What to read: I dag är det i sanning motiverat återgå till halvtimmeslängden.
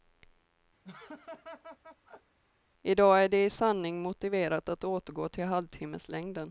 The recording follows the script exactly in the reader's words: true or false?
false